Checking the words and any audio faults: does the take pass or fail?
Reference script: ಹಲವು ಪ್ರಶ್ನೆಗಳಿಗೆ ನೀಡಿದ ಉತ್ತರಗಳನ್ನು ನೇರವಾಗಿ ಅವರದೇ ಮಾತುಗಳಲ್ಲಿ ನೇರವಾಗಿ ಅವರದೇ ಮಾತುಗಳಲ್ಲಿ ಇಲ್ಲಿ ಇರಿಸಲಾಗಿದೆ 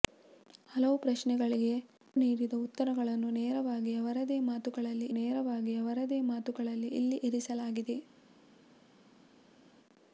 pass